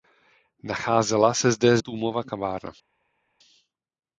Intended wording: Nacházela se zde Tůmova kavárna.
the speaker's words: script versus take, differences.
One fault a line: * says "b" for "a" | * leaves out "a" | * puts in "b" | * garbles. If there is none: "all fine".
all fine